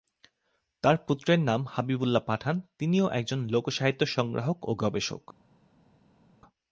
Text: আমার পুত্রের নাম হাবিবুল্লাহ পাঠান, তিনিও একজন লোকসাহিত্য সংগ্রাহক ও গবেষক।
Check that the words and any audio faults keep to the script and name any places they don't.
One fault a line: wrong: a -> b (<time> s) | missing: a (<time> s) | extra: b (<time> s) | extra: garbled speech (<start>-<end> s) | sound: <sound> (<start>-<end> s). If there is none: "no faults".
wrong: আমার -> তার (0.8 s)